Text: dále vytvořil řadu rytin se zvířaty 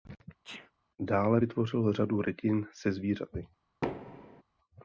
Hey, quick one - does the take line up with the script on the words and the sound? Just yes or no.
no